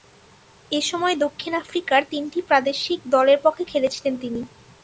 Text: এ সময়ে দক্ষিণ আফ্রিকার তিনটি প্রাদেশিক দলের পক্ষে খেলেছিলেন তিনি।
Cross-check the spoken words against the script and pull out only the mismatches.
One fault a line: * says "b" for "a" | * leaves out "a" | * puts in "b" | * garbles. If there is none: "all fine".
all fine